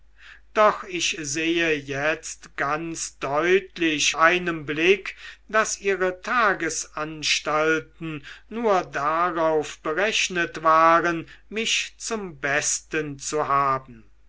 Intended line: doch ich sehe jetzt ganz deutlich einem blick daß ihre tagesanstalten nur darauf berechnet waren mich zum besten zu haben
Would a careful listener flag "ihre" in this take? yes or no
no